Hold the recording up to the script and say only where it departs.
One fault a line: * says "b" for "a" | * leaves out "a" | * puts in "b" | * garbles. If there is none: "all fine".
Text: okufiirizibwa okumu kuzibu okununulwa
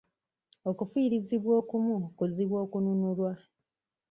all fine